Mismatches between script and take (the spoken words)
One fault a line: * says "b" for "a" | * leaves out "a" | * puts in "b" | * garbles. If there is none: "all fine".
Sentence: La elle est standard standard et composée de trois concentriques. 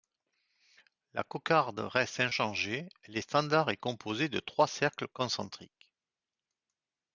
* puts in "cocarde reste inchangée"
* leaves out "standard"
* puts in "cercles"